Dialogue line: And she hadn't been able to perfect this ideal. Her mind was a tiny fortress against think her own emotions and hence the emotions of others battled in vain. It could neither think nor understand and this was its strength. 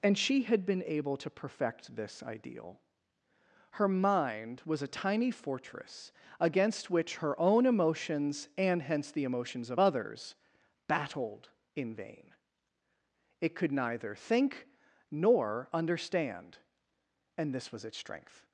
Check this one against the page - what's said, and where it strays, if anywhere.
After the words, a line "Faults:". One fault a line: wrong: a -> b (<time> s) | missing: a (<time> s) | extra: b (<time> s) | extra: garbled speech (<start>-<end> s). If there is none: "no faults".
And she had been able to perfect this ideal. Her mind was a tiny fortress against which her own emotions and hence the emotions of others battled in vain. It could neither think nor understand and this was its strength.
Faults:
wrong: hadn't -> had (0.4 s)
wrong: think -> which (6.9 s)